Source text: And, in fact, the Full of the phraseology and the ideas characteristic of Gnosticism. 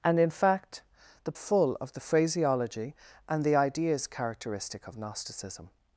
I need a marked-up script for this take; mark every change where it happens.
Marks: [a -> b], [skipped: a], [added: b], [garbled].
And, in fact, the Full of the phraseology and the ideas characteristic of Gnosticism.